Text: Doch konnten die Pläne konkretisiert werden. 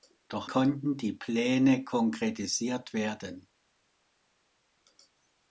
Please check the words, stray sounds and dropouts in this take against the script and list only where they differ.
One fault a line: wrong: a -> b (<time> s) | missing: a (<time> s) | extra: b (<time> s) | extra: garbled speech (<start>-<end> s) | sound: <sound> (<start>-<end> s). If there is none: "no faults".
no faults